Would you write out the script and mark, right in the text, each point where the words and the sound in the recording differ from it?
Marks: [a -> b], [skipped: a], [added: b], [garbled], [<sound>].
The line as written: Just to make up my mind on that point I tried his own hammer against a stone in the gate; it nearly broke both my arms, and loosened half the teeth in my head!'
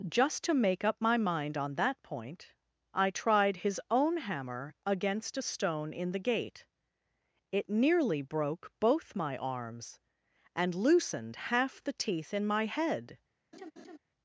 Just to make up my mind on that point I tried his own hammer against a stone in the gate; it nearly broke both my arms, and loosened half the teeth in my head!' [laugh]